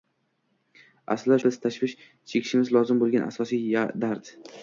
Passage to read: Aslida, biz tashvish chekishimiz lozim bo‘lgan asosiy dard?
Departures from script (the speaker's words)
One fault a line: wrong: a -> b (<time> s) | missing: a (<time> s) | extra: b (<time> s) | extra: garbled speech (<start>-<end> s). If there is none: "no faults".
no faults